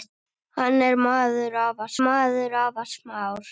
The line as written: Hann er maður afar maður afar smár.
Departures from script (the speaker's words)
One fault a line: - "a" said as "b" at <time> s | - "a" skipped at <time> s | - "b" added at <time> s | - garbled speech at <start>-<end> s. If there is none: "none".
none